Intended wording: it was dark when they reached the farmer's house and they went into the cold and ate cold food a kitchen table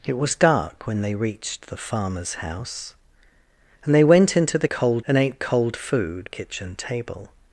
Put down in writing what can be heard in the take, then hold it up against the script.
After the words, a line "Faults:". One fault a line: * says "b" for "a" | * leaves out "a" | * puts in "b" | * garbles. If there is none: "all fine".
it was dark when they reached the farmer's house and they went into the cold and ate cold food a kitchen table
Faults:
all fine